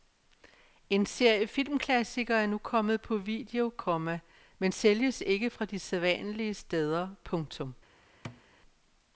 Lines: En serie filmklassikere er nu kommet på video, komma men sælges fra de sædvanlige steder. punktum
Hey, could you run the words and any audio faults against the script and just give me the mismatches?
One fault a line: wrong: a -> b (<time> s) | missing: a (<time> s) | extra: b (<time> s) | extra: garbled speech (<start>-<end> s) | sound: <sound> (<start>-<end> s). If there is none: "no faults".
extra: ikke (5.2 s)
sound: thud (8.2-8.4 s)